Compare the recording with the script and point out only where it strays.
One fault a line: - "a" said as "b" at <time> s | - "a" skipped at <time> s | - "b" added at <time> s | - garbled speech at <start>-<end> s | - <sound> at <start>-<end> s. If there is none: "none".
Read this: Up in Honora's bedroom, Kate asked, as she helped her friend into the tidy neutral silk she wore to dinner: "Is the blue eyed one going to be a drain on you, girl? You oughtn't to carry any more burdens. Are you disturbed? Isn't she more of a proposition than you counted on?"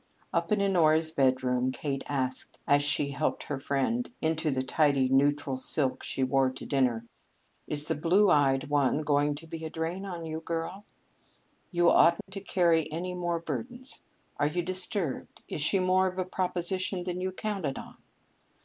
- dropout at 12.2-12.3 s
- "Isn't" said as "Is" at 15.5 s